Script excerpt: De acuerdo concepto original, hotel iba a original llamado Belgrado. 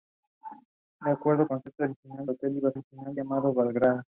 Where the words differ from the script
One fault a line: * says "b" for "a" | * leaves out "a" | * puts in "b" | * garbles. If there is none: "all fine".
all fine